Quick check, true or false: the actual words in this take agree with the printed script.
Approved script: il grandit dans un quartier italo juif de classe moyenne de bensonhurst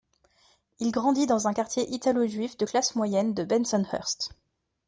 true